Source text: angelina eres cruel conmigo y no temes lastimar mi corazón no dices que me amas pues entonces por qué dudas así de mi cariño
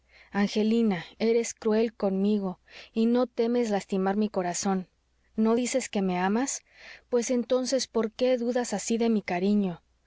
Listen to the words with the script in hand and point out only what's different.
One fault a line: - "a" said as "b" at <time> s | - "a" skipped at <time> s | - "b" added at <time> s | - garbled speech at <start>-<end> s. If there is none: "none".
none